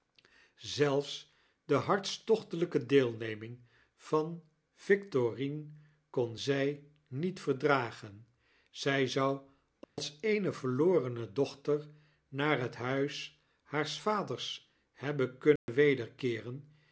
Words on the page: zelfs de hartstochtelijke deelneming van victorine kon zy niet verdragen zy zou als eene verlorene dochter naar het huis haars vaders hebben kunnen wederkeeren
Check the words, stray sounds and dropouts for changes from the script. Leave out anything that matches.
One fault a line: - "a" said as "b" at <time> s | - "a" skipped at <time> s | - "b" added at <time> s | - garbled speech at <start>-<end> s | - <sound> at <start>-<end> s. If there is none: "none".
- dropout at 9.8-10.0 s
- dropout at 15.6-15.7 s